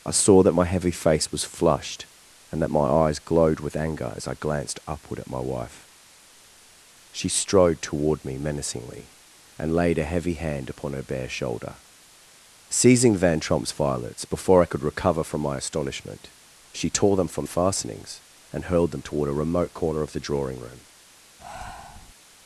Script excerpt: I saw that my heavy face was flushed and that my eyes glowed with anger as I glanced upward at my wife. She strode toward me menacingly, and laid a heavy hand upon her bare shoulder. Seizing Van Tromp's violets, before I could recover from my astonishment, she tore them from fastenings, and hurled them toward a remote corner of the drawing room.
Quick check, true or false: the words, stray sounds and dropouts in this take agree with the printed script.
false